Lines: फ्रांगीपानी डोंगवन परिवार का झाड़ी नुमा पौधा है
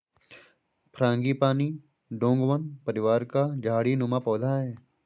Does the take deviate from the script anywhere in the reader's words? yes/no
no